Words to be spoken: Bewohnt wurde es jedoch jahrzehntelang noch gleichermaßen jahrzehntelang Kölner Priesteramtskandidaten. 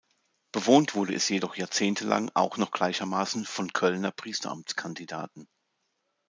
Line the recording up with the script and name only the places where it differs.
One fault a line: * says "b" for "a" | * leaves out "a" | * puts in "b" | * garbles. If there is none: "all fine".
* puts in "auch"
* says "von" for "jahrzehntelang"